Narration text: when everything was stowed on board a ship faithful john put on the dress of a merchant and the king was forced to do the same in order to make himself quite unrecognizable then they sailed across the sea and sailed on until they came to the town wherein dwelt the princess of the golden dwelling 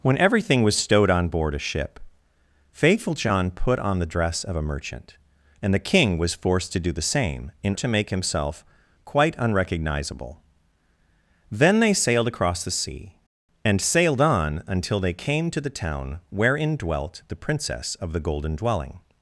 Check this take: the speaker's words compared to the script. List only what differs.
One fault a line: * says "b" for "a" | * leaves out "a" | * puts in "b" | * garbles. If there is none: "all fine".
* leaves out "order"